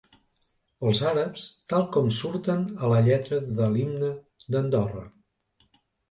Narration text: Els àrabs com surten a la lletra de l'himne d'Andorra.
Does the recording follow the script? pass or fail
fail